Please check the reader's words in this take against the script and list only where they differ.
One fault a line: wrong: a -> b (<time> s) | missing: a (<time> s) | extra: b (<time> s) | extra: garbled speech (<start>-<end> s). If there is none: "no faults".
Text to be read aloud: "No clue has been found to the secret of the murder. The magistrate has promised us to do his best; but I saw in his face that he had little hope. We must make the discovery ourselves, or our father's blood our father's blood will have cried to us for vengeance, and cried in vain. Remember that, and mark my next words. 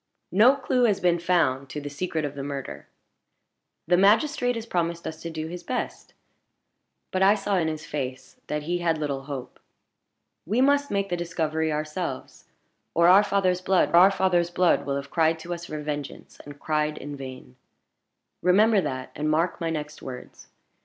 no faults